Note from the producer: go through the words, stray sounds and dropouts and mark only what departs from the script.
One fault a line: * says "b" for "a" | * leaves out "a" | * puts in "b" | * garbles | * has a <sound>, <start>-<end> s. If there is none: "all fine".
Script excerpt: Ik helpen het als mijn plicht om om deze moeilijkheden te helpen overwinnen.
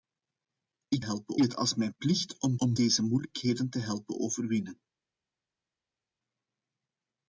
all fine